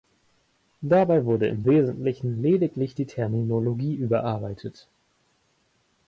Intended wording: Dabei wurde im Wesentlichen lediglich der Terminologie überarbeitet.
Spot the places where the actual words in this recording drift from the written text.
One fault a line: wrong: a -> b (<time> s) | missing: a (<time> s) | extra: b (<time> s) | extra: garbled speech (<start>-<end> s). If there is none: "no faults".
wrong: der -> die (2.9 s)